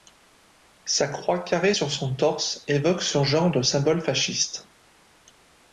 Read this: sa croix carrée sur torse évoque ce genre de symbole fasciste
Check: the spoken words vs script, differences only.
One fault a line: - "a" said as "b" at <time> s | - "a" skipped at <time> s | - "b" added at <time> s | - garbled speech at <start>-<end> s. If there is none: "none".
- "son" added at 1.9 s